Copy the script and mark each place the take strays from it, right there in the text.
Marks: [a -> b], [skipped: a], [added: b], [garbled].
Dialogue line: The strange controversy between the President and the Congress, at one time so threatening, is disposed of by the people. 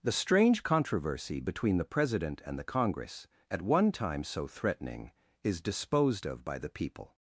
The strange controversy between the President and the Congress, at one time so threatening, is disposed of by the people.